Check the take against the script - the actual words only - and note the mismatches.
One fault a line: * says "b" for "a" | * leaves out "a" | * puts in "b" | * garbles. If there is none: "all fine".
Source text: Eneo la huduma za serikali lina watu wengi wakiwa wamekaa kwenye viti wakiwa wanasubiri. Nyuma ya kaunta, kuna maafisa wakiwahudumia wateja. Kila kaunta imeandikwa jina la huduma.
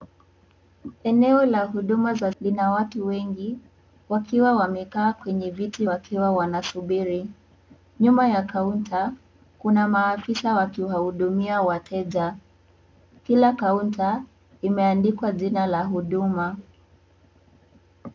* leaves out "serikali"